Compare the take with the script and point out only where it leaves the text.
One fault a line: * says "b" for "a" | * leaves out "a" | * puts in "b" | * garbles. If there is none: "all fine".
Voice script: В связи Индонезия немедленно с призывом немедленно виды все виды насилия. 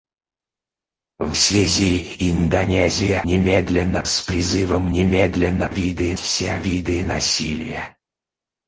all fine